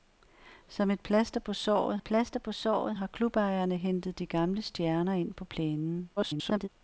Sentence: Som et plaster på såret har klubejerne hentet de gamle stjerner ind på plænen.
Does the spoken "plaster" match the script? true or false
true